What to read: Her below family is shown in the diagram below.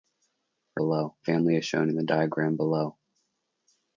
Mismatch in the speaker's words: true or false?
false